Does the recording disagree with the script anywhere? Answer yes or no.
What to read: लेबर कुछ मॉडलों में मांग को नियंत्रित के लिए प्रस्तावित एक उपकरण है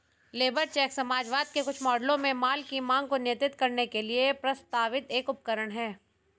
yes